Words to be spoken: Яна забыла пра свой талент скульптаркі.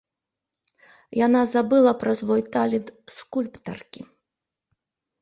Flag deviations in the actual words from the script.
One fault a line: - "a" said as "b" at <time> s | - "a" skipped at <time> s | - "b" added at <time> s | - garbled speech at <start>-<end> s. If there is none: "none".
none